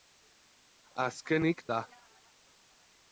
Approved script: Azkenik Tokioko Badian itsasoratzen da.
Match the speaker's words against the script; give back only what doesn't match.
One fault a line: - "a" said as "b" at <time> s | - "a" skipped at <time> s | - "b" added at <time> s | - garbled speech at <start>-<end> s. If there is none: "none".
- "Tokioko Badian itsasoratzen" skipped at 1.6 s